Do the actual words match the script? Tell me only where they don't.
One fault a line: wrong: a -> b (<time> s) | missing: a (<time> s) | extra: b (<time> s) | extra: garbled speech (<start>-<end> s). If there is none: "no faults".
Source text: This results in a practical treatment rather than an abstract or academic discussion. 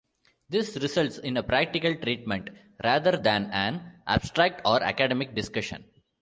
no faults